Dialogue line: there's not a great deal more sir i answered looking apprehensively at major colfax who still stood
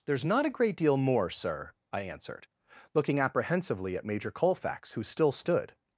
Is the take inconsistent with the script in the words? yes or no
no